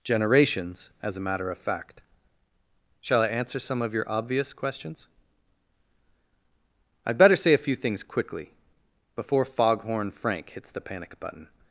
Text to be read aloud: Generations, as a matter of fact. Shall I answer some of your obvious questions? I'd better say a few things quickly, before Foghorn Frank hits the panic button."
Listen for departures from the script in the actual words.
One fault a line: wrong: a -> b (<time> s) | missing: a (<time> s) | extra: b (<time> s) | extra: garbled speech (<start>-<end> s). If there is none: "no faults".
no faults